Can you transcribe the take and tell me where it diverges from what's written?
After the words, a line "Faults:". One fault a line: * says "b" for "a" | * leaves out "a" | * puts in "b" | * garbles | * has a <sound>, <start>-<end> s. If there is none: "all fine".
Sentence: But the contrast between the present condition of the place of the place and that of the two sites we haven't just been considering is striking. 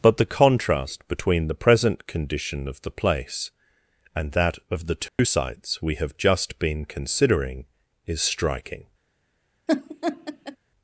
But the contrast between the present condition of the place and that of the two sites we have just been considering is striking.
Faults:
* leaves out "of the place"
* has a dropout, 5.1-5.2 s
* says "have" for "haven't"
* has a laugh, 9.7-10.6 s